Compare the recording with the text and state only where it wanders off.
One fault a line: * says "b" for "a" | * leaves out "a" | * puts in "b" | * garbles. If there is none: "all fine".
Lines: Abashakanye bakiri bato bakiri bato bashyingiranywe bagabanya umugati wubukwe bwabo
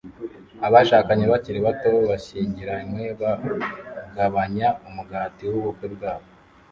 * leaves out "bakiri bato"